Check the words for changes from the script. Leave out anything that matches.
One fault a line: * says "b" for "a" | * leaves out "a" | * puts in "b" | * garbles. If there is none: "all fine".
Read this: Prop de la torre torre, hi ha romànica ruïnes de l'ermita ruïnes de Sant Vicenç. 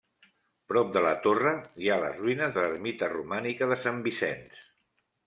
* leaves out "torre"
* says "les" for "romànica"
* says "romànica" for "ruïnes"